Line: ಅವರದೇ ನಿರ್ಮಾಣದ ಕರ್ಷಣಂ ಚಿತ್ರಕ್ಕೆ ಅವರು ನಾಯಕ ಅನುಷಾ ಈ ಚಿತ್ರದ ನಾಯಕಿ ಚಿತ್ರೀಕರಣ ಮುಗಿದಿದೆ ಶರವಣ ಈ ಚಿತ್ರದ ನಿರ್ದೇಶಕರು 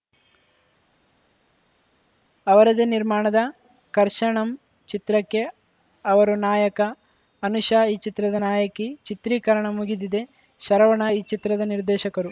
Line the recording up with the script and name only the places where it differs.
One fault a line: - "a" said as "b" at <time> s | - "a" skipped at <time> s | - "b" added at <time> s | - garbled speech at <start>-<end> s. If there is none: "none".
none